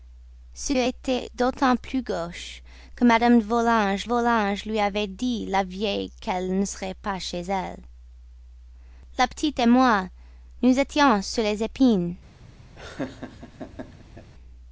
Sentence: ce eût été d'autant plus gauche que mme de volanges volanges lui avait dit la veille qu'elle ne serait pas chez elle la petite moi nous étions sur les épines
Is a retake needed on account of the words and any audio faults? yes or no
yes